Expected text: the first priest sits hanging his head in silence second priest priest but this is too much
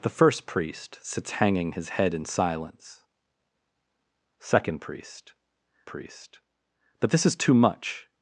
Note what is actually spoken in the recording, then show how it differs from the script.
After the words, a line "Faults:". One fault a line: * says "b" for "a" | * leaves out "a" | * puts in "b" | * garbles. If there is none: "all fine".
the first priest sits hanging his head in silence second priest priest but this is too much
Faults:
all fine